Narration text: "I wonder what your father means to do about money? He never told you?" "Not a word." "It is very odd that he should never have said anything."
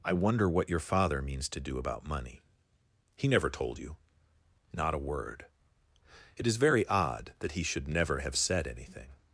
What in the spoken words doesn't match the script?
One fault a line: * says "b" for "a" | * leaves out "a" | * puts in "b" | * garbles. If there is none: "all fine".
all fine